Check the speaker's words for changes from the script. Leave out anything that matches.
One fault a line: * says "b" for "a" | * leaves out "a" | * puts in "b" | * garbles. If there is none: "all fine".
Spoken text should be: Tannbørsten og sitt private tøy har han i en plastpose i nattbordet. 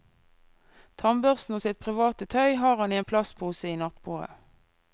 all fine